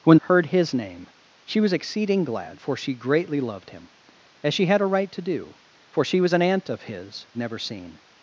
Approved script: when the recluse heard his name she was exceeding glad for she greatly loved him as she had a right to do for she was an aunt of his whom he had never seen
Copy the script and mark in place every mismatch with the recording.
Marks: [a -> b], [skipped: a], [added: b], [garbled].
when [skipped: the recluse] heard his name she was exceeding glad for she greatly loved him as she had a right to do for she was an aunt of his [skipped: whom he had] never seen